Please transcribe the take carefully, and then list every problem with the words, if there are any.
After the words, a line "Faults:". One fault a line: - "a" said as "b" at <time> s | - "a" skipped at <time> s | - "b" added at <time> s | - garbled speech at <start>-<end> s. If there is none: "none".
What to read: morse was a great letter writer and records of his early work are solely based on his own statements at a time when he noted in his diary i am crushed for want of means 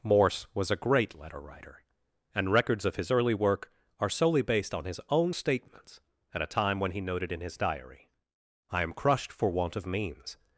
morse was a great letter writer and records of his early work are solely based on his own statements at a time when he noted in his diary i am crushed for want of means
Faults:
none